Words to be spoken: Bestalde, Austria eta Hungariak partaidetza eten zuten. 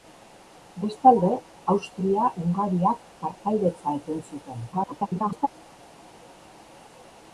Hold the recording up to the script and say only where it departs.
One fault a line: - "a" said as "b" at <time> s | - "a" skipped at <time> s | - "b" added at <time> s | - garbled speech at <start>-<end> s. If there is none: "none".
- "eta" skipped at 2.3 s
- garbled speech at 4.7-5.5 s